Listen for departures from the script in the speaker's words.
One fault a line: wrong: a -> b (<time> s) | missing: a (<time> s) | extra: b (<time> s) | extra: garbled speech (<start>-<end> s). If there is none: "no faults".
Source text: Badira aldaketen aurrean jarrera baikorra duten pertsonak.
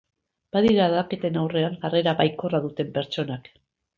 no faults